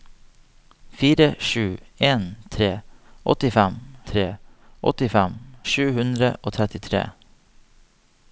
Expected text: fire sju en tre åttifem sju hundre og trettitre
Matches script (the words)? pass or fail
fail